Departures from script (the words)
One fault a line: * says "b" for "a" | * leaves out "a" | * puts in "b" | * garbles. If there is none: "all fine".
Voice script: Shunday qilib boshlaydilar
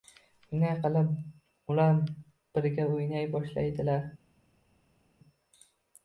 * puts in "ular birga o‘ynay"